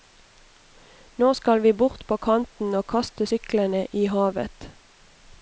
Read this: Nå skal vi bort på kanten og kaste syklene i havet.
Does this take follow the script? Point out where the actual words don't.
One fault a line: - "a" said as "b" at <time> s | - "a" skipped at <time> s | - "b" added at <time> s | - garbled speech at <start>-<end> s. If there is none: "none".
none